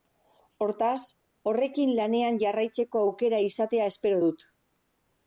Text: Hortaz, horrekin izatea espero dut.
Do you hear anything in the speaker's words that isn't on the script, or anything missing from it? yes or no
yes